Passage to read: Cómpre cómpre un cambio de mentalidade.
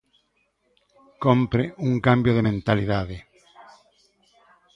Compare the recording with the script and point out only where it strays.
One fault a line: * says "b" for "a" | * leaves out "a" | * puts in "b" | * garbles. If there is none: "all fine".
* leaves out "cómpre"